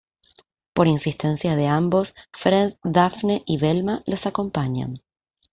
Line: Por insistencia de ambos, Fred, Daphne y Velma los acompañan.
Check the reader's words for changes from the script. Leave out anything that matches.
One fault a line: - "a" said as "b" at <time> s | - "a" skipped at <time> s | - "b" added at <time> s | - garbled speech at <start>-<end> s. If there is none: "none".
none